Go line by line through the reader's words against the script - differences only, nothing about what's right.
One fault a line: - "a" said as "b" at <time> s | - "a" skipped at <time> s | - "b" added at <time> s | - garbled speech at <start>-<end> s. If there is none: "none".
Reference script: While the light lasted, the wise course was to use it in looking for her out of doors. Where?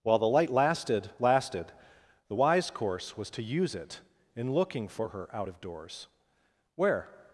- "lasted" added at 1.2 s